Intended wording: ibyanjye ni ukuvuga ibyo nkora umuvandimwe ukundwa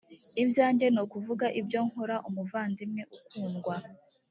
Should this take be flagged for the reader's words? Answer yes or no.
no